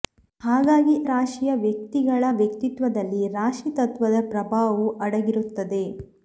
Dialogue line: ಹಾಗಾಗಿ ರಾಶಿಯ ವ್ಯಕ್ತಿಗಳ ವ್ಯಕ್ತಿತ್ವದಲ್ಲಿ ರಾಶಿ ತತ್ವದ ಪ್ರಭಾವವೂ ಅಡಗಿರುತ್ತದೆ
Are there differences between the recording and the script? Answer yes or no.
no